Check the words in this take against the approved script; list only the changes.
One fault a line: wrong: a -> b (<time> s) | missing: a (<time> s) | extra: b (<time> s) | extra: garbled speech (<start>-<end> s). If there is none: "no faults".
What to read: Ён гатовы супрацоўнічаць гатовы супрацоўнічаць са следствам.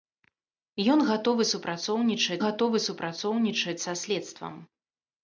no faults